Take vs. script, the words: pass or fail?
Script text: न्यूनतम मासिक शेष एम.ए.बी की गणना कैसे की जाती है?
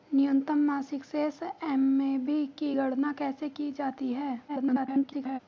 fail